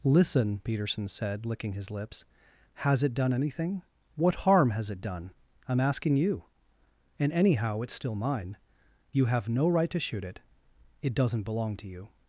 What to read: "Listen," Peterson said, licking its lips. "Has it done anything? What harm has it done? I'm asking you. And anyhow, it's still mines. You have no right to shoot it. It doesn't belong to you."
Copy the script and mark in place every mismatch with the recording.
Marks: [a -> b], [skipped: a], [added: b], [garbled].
"Listen," Peterson said, licking [its -> his] lips. "Has it done anything? What harm has it done? I'm asking you. And anyhow, it's still [mines. -> mine] You have no right to shoot it. It doesn't belong to you."